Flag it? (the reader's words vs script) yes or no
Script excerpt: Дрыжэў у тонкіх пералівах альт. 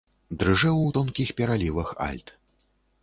no